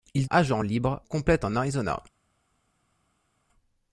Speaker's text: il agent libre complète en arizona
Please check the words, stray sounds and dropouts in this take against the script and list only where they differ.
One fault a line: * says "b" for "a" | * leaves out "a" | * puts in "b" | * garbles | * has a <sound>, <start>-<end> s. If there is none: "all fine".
all fine